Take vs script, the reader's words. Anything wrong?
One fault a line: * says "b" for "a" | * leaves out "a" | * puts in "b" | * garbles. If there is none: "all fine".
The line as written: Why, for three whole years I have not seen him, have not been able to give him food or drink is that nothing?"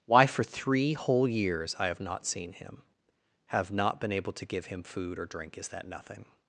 all fine